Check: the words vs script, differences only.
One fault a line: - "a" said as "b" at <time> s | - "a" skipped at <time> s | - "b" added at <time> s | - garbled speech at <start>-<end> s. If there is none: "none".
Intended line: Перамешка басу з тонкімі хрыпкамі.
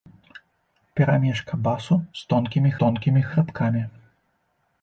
- "тонкімі" added at 2.8 s